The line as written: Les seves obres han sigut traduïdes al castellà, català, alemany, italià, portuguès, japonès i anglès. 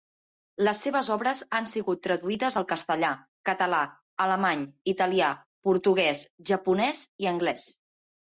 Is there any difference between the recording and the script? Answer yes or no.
no